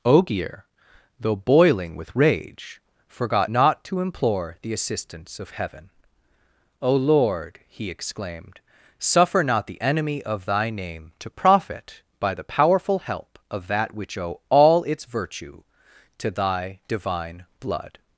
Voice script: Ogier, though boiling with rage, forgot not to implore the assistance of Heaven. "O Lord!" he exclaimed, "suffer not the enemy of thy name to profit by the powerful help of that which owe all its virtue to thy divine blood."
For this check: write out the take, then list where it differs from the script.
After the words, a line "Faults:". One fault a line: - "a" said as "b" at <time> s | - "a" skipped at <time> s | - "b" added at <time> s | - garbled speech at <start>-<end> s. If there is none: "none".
Ogier, though boiling with rage, forgot not to implore the assistance of Heaven. "O Lord!" he exclaimed, "suffer not the enemy of thy name to profit by the powerful help of that which owe all its virtue to thy divine blood."
Faults:
none